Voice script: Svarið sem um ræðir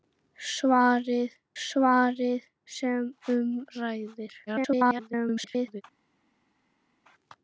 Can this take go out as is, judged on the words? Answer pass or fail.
fail